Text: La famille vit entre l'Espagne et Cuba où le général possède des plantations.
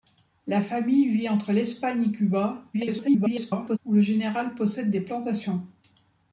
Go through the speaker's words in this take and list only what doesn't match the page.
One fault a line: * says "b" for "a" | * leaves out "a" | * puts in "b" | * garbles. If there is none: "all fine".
* garbles